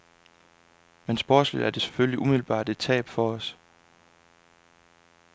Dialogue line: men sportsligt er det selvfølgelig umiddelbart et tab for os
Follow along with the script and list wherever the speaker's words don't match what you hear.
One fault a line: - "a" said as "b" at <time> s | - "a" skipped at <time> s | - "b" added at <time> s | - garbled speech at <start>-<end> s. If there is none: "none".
none